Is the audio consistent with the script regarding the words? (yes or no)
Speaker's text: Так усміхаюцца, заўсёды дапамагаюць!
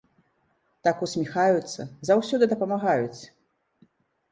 yes